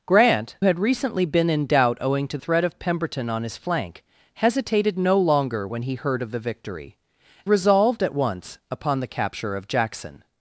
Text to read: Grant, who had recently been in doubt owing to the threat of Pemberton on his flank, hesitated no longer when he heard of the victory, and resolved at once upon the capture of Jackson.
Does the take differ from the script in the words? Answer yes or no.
yes